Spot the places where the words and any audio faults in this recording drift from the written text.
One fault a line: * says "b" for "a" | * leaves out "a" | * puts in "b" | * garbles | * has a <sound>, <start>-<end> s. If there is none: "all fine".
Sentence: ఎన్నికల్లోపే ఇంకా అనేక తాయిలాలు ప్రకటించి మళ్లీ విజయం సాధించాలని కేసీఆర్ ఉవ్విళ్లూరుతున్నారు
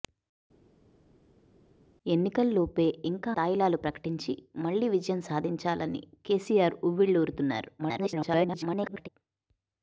* leaves out "అనేక"
* garbles